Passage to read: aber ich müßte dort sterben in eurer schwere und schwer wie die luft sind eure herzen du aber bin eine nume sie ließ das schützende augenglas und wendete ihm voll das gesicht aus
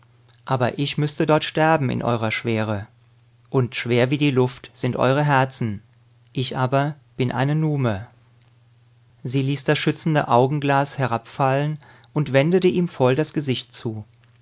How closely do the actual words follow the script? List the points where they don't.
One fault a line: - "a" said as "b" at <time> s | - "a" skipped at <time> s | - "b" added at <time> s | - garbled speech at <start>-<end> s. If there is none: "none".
- "du" said as "ich" at 6.3 s
- "herabfallen" added at 11.0 s
- "aus" said as "zu" at 13.7 s